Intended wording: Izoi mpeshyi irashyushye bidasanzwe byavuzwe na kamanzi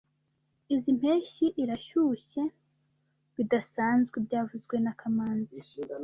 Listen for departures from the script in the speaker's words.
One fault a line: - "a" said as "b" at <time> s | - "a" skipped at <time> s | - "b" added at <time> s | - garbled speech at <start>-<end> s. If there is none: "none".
none